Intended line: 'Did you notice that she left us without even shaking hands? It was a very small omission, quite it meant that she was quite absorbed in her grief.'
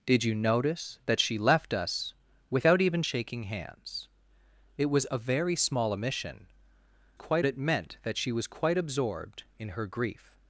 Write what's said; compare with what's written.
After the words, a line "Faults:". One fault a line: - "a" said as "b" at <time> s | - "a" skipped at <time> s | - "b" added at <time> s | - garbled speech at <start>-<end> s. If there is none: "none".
'Did you notice that she left us without even shaking hands? It was a very small omission, quite it meant that she was quite absorbed in her grief.'
Faults:
none